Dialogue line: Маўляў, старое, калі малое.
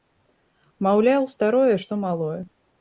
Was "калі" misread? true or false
true